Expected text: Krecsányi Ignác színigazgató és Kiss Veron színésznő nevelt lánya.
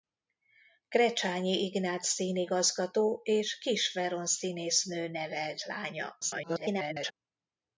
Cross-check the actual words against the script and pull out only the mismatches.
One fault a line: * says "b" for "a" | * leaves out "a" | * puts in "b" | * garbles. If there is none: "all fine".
* garbles